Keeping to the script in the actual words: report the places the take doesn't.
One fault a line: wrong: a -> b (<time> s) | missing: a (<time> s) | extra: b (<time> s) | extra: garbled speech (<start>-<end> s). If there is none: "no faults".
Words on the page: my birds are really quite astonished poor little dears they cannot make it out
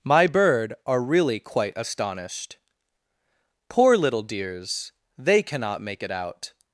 wrong: birds -> bird (0.2 s)